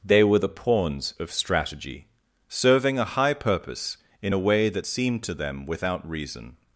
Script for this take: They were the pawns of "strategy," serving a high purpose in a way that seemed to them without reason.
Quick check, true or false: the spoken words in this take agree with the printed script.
true